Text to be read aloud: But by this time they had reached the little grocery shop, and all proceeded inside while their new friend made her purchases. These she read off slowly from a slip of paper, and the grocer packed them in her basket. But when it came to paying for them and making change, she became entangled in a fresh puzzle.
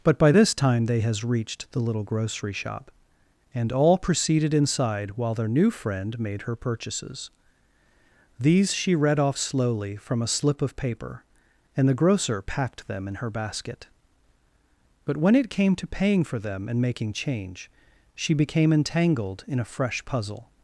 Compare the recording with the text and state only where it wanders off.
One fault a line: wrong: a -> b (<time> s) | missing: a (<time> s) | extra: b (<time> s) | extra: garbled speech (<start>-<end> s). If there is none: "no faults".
wrong: had -> has (1.0 s)